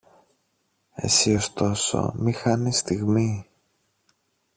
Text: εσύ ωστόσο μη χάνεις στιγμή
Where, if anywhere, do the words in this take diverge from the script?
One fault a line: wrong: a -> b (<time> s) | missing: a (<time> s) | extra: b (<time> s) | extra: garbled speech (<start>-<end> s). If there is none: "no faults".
no faults